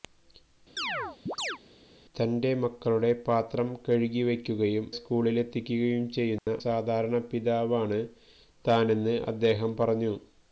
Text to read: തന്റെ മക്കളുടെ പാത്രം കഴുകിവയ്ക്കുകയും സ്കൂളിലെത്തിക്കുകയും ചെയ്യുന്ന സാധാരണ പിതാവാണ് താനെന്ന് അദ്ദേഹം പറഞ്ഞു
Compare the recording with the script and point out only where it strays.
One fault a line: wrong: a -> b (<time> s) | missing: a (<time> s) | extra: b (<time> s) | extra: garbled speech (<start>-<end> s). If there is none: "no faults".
no faults